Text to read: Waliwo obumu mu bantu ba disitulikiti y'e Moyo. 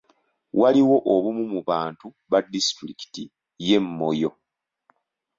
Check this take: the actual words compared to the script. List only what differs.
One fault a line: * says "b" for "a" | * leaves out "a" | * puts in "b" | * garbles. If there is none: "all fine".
all fine